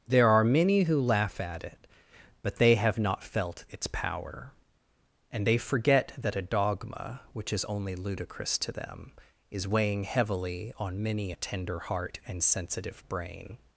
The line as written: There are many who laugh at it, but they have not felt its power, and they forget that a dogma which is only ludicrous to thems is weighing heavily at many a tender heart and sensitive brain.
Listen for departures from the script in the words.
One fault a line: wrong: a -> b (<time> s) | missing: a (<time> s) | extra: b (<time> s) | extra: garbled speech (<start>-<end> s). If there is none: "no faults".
wrong: thems -> them (8.7 s)
wrong: at -> on (10.8 s)